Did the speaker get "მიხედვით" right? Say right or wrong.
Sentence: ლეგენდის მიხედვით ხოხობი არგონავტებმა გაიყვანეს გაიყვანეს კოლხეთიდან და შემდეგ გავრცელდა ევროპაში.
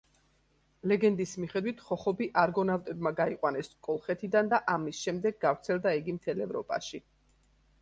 right